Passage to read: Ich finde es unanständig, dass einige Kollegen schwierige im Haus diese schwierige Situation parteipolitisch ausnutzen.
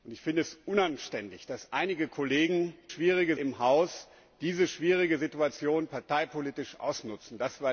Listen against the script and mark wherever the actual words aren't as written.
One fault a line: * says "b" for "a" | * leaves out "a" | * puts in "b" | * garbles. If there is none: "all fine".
all fine